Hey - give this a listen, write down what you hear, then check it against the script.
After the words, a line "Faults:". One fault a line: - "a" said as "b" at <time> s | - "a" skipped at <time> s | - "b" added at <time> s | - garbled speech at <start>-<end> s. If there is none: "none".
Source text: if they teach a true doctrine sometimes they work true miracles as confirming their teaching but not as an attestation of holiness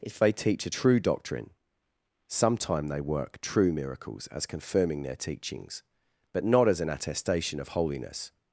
if they teach a true doctrine sometime they work true miracles as confirming their teachings but not as an attestation of holiness
Faults:
- "sometimes" said as "sometime" at 2.3 s
- "teaching" said as "teachings" at 5.2 s